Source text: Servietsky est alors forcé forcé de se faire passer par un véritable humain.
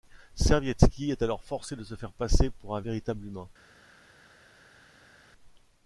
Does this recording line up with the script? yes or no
no